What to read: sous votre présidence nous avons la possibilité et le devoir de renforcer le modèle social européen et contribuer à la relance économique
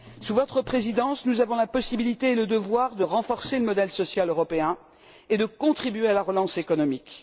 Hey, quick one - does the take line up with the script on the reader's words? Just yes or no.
no